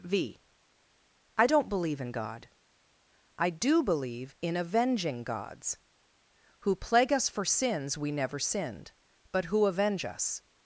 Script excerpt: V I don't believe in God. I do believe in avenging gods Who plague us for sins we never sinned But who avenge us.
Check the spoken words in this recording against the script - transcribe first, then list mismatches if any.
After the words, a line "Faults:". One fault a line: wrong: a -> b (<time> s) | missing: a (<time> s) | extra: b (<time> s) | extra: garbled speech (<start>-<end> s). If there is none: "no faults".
V I don't believe in God. I do believe in avenging gods Who plague us for sins we never sinned But who avenge us.
Faults:
no faults